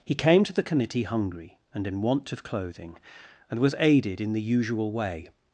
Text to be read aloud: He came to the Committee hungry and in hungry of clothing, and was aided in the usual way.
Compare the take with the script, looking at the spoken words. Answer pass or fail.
fail